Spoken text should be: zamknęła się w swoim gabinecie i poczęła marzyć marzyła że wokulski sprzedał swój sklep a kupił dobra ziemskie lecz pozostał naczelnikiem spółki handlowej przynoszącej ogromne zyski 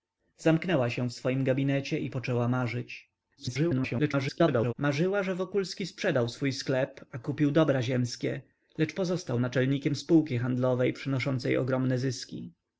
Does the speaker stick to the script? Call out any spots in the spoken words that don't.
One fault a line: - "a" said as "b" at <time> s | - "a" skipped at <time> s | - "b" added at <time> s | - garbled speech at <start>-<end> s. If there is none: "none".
- garbled speech at 3.4-4.7 s